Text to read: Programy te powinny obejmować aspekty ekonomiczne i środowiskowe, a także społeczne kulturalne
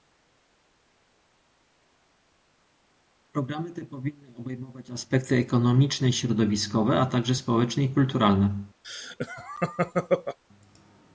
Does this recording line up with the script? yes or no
no